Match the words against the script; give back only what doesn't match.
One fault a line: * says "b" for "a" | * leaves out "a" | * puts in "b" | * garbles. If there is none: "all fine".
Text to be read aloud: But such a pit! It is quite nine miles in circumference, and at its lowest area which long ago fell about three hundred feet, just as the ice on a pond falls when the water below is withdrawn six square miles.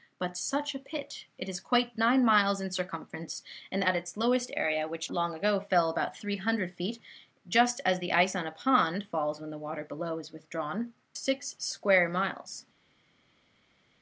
all fine